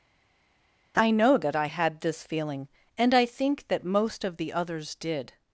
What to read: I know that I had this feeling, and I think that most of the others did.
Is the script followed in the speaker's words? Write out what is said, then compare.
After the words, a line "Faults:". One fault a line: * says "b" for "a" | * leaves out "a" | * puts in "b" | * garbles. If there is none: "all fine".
I know that I had this feeling, and I think that most of the others did.
Faults:
all fine